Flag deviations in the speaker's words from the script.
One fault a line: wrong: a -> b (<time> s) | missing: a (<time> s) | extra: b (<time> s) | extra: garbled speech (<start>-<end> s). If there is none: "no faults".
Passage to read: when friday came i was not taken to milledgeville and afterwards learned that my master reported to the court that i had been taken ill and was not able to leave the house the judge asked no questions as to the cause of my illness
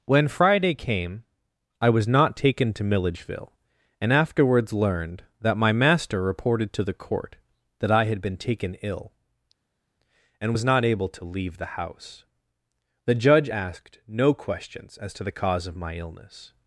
no faults